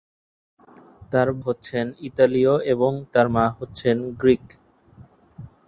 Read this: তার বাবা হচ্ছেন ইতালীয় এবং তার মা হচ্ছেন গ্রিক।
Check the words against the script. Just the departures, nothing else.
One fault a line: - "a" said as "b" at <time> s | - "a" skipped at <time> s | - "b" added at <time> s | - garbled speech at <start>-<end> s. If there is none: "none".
- "বাবা" skipped at 1.3 s